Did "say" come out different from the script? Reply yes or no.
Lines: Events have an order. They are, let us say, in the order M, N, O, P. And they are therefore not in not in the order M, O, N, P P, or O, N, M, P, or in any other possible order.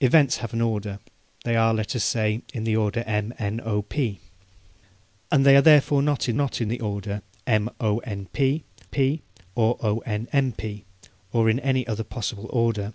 no